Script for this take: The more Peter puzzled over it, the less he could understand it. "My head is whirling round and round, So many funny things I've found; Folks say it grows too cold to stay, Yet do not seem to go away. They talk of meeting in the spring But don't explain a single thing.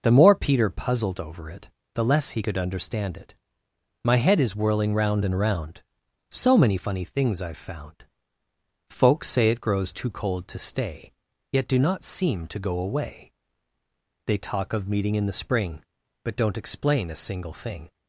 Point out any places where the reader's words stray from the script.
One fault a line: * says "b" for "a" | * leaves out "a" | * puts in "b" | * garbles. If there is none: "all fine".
all fine